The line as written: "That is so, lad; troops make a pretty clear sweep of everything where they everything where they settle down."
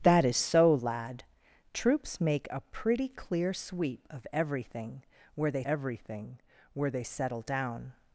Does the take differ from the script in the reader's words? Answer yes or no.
no